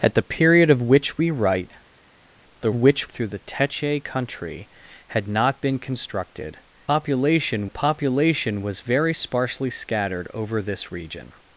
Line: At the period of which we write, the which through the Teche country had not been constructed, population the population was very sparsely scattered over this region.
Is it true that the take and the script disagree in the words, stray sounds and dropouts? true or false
false